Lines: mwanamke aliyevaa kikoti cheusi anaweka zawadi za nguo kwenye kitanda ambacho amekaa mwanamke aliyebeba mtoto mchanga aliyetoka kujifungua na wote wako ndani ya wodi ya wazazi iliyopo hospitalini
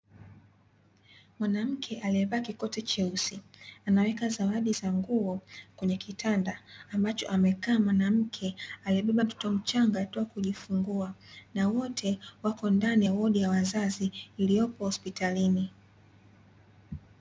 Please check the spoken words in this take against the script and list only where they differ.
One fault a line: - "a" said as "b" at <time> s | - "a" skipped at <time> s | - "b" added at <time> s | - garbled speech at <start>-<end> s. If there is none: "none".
none